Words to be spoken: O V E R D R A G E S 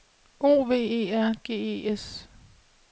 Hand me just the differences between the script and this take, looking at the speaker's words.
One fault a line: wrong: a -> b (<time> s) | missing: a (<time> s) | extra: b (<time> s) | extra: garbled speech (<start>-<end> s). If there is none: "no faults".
missing: D R A (1.3 s)